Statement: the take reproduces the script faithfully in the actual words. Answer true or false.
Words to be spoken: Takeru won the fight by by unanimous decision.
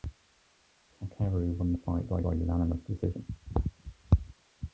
true